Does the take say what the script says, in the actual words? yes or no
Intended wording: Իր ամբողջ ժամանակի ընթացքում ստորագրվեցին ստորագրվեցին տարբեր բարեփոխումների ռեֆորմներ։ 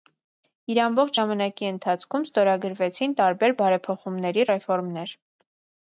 no